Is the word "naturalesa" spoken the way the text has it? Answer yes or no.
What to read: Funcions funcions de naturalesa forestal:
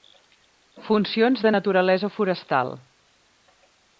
yes